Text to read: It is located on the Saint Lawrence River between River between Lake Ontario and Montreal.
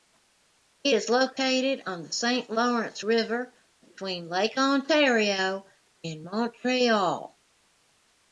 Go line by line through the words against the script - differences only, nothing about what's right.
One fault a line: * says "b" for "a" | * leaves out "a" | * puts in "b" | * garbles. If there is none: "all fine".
* leaves out "River between"